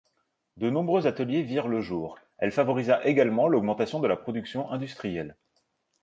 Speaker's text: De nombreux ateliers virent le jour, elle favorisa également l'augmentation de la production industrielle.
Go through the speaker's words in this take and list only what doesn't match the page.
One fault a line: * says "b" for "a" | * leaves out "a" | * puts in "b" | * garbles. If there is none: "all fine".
all fine